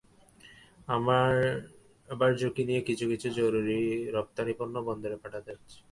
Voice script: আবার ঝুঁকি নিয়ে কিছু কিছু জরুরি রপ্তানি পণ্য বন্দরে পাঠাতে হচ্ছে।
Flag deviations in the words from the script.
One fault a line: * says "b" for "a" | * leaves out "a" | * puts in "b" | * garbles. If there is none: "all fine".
all fine